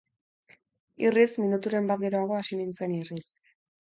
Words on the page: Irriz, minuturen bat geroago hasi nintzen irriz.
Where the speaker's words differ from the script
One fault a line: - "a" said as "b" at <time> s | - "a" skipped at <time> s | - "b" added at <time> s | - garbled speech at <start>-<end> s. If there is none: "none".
none